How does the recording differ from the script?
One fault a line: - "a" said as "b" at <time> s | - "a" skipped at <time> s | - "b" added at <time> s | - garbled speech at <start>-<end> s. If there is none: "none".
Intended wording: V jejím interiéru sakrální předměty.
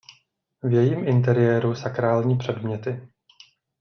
none